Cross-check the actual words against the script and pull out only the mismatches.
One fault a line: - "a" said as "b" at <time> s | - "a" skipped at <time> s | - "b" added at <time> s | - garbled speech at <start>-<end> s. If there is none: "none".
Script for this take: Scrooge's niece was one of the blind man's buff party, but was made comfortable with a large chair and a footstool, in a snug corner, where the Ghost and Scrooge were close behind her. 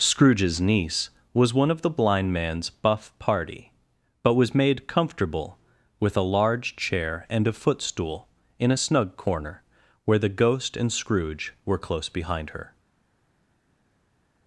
none